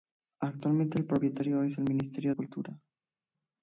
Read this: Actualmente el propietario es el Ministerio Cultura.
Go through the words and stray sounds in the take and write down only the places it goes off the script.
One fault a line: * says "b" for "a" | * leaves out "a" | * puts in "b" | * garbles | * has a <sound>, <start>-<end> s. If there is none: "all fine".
all fine